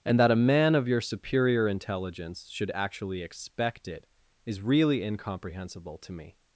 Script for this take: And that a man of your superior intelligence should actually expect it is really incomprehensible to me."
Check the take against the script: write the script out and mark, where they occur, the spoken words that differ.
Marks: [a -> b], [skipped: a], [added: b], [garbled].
And that a man of your superior intelligence should actually expect it is really incomprehensible to me."